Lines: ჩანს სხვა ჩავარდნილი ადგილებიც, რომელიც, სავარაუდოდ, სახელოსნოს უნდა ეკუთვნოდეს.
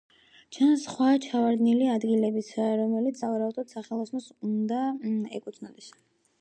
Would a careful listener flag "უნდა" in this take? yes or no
no